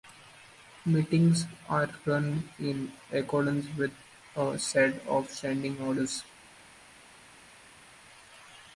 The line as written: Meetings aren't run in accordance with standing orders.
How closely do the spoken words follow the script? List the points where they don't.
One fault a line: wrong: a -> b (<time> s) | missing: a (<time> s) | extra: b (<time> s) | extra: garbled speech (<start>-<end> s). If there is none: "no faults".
wrong: aren't -> are (1.7 s)
extra: a set of (4.3 s)